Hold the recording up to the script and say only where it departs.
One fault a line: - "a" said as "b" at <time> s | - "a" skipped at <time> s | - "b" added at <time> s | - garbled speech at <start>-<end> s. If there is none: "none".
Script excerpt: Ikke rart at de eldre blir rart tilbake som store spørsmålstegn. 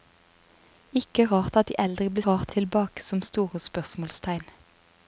none